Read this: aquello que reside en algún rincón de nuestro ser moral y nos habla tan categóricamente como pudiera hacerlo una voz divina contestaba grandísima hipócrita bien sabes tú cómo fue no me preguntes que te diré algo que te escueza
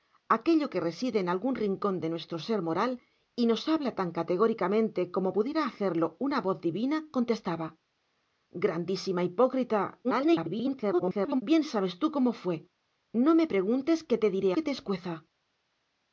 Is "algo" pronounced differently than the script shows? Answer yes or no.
yes